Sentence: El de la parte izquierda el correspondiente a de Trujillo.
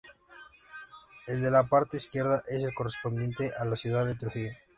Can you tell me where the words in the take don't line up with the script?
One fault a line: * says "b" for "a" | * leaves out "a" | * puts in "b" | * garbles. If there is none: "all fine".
* puts in "es"
* puts in "la ciudad"